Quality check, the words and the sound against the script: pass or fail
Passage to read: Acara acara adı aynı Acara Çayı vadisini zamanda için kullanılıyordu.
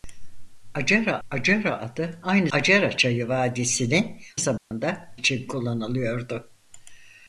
fail